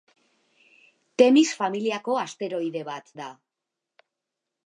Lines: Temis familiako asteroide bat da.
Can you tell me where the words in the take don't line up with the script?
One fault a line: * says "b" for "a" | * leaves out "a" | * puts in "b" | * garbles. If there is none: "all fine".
all fine